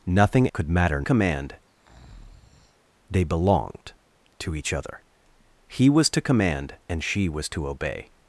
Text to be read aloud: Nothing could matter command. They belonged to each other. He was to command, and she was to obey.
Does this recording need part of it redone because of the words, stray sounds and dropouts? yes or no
yes